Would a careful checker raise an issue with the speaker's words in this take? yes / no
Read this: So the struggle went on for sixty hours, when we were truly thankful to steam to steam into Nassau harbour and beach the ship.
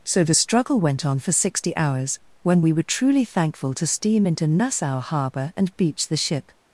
yes